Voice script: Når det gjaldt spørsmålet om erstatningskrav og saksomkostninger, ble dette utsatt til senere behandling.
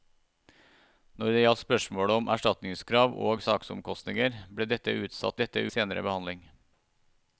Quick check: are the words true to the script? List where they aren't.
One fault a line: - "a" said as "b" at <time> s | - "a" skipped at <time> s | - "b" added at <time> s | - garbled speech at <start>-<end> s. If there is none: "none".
- "til" said as "dette" at 5.4 s